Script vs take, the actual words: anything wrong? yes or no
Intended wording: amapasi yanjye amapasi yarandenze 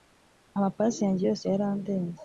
yes